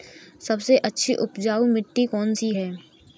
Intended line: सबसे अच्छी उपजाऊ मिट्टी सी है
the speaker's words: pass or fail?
fail